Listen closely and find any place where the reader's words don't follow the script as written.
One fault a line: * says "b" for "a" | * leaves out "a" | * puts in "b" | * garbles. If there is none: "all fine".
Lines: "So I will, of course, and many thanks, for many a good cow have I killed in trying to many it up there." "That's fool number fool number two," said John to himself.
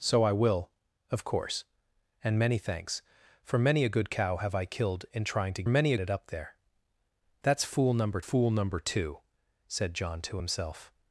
all fine